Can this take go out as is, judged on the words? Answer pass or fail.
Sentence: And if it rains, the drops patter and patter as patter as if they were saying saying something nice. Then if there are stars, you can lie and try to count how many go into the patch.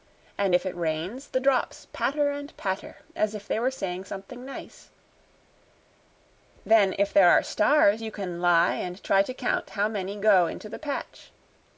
fail